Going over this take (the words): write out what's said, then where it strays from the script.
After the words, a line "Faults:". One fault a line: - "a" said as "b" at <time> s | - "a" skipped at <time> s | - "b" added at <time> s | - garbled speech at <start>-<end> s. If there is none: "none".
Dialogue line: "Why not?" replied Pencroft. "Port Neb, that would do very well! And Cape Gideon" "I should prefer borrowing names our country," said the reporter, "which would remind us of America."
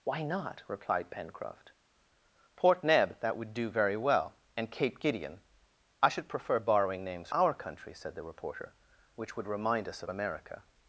"Why not?" replied Pencroft. "Port Neb, that would do very well! And Cape Gideon" "I should prefer borrowing names our country," said the reporter, "which would remind us of America."
Faults:
none